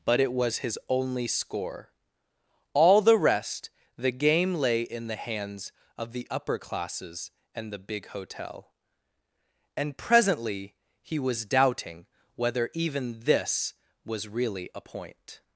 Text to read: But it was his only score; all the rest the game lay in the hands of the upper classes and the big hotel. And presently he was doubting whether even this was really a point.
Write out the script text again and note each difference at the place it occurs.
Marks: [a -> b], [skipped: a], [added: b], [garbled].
But it was his only score; all the rest the game lay in the hands of the upper classes and the big hotel. And presently he was doubting whether even this was really a point.